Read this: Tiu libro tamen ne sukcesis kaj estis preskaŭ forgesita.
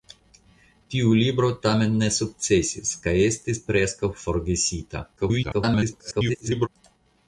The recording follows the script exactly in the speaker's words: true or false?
false